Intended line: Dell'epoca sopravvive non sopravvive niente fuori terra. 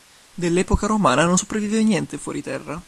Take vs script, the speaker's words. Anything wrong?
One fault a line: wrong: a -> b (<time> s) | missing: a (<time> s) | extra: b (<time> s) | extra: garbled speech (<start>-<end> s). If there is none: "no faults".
wrong: sopravvive -> romana (0.9 s)